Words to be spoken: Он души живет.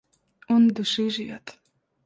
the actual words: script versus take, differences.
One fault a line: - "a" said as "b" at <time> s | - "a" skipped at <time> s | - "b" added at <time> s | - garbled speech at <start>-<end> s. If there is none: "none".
none